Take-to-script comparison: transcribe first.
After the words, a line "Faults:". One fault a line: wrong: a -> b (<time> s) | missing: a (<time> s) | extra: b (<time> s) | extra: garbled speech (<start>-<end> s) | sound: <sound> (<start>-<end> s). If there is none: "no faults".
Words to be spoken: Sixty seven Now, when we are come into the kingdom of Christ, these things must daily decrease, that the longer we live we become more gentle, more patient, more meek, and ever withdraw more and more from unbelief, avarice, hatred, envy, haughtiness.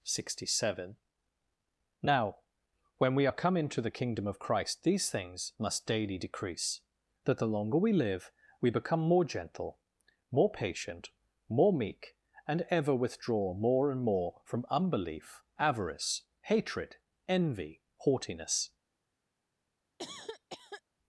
Sixty seven Now, when we are come into the kingdom of Christ, these things must daily decrease, that the longer we live we become more gentle, more patient, more meek, and ever withdraw more and more from unbelief, avarice, hatred, envy, haughtiness.
Faults:
sound: cough (20.0-20.8 s)